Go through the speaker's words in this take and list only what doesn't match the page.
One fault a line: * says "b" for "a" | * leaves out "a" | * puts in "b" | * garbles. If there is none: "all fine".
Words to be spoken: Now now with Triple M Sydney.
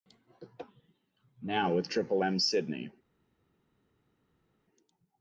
* leaves out "now"